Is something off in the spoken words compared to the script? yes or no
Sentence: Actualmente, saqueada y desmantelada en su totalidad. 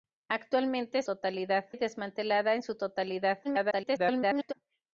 yes